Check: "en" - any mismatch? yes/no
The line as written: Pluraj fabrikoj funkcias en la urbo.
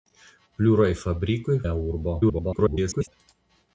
yes